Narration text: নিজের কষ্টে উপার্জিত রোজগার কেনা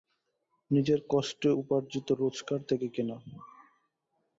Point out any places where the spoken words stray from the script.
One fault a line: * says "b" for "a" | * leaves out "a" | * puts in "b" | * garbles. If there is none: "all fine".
* puts in "থেকে"